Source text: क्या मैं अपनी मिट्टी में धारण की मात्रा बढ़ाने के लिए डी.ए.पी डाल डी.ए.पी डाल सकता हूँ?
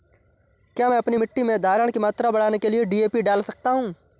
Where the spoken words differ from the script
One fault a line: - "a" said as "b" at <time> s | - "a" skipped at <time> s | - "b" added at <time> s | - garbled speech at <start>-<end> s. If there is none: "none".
- "डी.ए.पी डाल" skipped at 3.4 s